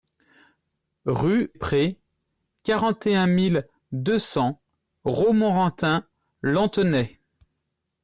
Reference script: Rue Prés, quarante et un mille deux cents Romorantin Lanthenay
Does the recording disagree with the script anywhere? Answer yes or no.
no